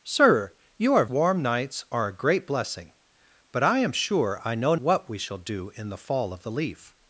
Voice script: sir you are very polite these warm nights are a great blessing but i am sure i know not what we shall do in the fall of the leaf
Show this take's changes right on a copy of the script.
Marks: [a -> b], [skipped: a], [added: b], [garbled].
sir you are [skipped: very polite these] warm nights are a great blessing but i am sure i know [skipped: not] what we shall do in the fall of the leaf